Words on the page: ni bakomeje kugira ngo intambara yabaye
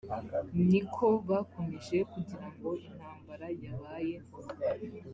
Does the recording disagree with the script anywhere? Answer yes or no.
yes